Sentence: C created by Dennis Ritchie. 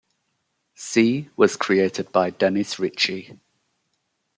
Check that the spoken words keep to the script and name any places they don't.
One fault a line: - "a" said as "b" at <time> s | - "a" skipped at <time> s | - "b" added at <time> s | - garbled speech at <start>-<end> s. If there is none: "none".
- "was" added at 1.4 s